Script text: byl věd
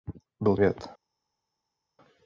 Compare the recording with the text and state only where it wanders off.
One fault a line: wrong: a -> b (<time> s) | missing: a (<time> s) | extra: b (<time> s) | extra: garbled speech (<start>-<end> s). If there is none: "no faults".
no faults